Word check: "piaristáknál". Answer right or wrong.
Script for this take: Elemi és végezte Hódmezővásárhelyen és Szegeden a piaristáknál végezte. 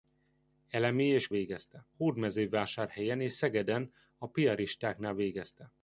right